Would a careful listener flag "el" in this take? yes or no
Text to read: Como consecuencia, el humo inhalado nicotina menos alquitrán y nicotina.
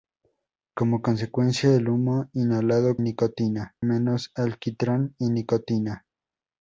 no